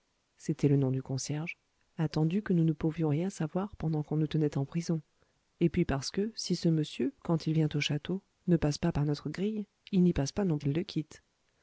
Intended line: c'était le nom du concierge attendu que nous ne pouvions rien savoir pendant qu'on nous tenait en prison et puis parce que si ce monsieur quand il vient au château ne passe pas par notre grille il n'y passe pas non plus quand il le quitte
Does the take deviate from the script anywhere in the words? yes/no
yes